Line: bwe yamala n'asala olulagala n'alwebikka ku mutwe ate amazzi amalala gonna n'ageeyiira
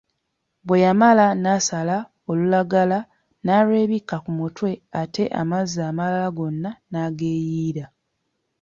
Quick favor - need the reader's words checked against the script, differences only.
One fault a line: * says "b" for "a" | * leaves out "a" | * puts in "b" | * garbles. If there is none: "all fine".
all fine